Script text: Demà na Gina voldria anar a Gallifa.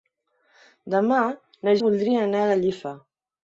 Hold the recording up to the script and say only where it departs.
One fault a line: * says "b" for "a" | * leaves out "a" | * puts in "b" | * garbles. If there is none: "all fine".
* leaves out "Gina"